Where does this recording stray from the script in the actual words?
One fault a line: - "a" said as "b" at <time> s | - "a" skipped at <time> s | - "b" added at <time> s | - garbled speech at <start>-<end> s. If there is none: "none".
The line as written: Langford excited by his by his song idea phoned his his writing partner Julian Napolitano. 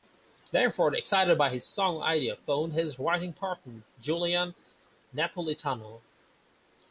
- "by his" skipped at 1.6 s
- "his" skipped at 3.0 s